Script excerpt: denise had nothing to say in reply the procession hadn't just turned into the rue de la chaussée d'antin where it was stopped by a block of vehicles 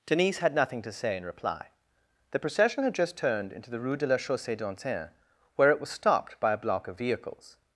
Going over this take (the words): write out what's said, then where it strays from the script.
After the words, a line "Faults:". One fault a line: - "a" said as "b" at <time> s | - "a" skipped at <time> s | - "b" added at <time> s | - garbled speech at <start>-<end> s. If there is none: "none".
denise had nothing to say in reply the procession had just turned into the rue de la chaussée d'antin where it was stopped by a block of vehicles
Faults:
- "hadn't" said as "had" at 2.8 s